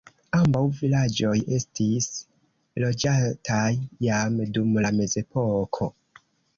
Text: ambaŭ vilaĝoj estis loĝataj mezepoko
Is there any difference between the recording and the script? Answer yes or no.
yes